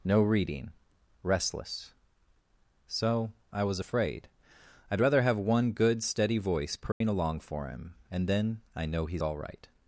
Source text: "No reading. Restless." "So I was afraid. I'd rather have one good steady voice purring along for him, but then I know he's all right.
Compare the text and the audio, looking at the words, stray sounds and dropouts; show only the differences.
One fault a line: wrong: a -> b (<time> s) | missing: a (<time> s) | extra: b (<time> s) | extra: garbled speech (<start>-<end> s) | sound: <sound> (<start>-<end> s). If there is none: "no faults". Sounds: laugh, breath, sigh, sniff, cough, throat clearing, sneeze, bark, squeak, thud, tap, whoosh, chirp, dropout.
sound: dropout (6.9-7.0 s)
wrong: but -> and (8.1 s)